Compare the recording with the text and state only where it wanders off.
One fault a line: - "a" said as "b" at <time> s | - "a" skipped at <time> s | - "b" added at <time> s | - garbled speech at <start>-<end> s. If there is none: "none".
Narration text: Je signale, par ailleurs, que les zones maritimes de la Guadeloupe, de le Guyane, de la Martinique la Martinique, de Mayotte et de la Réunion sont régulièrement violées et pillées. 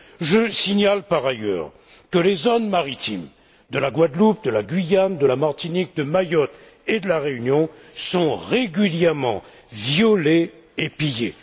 - "le" said as "la" at 4.5 s
- "la Martinique" skipped at 6.0 s